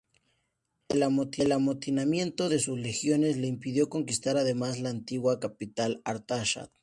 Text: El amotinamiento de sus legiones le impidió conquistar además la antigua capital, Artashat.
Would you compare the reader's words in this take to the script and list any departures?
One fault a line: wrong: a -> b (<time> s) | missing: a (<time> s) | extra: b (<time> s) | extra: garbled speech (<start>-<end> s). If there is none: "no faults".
no faults